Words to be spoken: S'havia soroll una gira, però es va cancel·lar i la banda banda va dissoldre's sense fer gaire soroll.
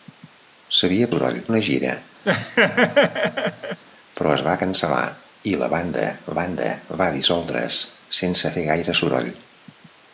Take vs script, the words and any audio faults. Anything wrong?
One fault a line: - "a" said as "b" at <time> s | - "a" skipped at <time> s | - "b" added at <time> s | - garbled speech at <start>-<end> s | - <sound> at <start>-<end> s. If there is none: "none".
- laugh at 2.2-3.8 s